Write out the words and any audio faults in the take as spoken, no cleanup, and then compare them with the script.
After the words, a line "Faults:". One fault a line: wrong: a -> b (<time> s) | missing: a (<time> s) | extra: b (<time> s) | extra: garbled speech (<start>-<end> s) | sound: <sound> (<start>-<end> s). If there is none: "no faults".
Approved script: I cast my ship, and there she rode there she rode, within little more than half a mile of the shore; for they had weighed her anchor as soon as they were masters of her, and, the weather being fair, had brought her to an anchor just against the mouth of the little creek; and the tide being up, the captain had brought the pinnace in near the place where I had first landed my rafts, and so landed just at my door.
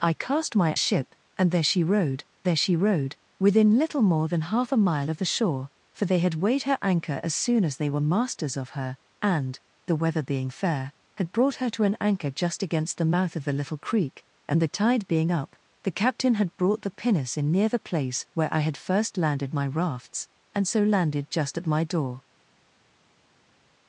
I cast my ship, and there she rode there she rode, within little more than half a mile of the shore; for they had weighed her anchor as soon as they were masters of her, and, the weather being fair, had brought her to an anchor just against the mouth of the little creek; and the tide being up, the captain had brought the pinnace in near the place where I had first landed my rafts, and so landed just at my door.
Faults:
no faults